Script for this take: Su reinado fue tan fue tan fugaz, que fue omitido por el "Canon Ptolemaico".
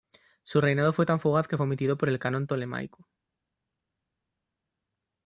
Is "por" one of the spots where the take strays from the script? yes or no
no